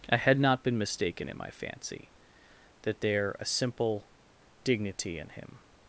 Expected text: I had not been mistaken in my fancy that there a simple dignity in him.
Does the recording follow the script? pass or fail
pass